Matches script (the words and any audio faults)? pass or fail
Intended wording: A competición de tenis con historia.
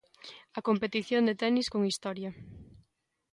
pass